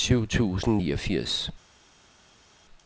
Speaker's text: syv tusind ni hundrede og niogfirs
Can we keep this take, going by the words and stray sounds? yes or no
no